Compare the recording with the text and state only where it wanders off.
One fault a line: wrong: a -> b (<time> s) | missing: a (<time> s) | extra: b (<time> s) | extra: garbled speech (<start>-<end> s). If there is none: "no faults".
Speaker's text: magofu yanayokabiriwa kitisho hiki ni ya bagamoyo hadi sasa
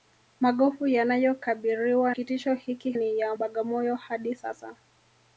no faults